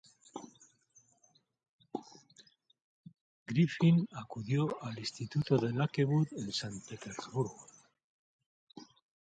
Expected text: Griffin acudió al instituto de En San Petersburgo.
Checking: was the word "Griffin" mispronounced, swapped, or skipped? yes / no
no